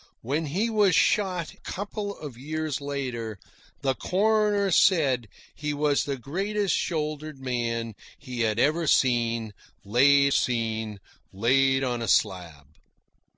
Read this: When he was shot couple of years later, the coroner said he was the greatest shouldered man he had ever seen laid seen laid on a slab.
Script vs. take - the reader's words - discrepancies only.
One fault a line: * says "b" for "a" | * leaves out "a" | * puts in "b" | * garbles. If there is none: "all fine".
all fine